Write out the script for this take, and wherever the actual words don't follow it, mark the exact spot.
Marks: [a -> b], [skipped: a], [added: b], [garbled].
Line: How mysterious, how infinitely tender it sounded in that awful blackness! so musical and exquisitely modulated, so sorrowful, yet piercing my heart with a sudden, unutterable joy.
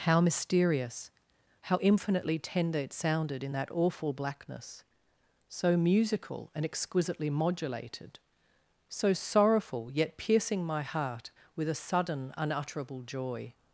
How mysterious, how infinitely tender it sounded in that awful blackness! so musical and exquisitely modulated, so sorrowful, yet piercing my heart with a sudden, unutterable joy.